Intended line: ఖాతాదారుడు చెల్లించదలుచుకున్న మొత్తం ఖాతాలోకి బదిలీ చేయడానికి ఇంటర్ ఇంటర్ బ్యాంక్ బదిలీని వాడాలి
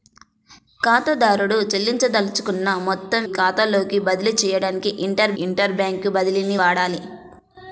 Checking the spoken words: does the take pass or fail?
pass